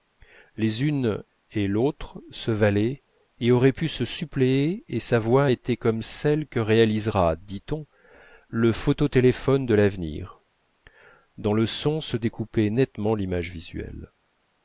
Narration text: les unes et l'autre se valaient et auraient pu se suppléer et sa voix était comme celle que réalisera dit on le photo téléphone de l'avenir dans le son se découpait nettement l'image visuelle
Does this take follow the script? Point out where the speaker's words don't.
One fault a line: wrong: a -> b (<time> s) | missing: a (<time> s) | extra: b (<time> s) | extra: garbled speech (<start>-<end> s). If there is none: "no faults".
no faults